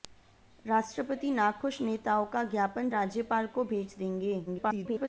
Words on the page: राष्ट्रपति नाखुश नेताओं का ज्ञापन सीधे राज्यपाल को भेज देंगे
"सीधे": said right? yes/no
no